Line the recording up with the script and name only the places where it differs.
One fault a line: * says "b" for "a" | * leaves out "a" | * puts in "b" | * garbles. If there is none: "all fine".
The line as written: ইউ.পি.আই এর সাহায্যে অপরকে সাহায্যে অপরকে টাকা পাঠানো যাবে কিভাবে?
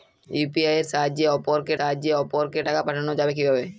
all fine